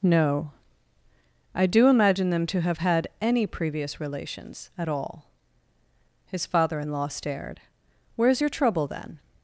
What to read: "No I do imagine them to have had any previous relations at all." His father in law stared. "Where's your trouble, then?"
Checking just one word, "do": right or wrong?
right